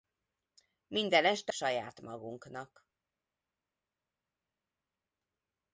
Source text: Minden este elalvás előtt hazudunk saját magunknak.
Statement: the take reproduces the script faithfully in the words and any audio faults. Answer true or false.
false